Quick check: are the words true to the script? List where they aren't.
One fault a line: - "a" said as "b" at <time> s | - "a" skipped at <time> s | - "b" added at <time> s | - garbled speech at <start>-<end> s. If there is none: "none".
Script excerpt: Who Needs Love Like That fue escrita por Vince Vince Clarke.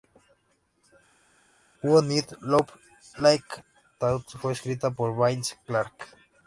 - "Vince" skipped at 5.6 s